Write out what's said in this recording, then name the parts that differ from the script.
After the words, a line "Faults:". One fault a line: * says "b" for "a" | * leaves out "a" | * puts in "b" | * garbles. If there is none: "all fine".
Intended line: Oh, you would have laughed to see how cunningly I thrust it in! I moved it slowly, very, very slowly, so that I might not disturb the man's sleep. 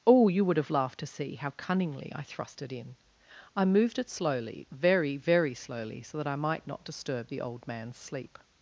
Oh, you would have laughed to see how cunningly I thrust it in! I moved it slowly, very, very slowly, so that I might not disturb the old man's sleep.
Faults:
* puts in "old"